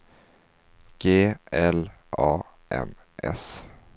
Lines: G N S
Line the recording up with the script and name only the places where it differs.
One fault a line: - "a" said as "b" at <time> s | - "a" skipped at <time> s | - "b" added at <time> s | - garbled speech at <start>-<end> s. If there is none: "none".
- "L A" added at 1.5 s